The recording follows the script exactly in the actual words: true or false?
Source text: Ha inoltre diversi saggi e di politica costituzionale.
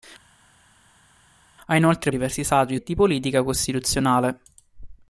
true